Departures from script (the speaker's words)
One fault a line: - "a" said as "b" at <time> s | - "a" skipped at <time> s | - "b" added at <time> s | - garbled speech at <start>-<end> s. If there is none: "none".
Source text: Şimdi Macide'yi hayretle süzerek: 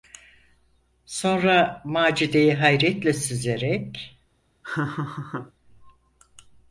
- "Şimdi" said as "Sonra" at 1.1 s